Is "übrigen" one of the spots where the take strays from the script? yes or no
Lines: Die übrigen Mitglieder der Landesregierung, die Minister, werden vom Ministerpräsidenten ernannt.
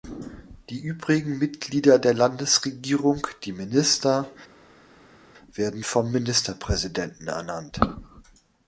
no